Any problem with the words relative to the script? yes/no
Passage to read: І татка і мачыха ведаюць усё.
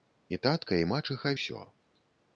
yes